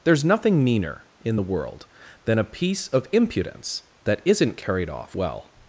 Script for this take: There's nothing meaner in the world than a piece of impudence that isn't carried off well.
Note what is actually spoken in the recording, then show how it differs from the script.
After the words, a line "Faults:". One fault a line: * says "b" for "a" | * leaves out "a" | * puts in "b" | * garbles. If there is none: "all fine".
There's nothing meaner in the world than a piece of impudence that isn't carried off well.
Faults:
all fine